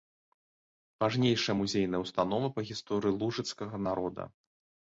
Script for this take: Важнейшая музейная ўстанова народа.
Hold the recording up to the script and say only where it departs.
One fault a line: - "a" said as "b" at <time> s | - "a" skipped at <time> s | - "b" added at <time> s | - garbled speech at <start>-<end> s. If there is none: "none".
- "па гісторыі лужыцкага" added at 2.6 s